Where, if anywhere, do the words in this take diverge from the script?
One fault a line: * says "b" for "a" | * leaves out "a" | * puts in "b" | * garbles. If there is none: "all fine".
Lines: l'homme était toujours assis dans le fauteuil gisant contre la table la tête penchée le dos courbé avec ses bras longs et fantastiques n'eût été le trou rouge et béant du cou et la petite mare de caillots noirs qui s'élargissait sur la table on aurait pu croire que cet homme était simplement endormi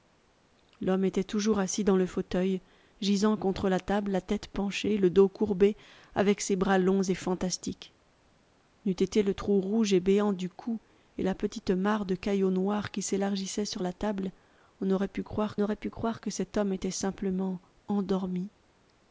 * puts in "aurait pu croire"